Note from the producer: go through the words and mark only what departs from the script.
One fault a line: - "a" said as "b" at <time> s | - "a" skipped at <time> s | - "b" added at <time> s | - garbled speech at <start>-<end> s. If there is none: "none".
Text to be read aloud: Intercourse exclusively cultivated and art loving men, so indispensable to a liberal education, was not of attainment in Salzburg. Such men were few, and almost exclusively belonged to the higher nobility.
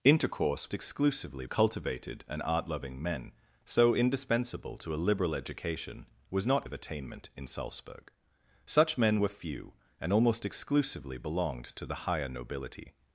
none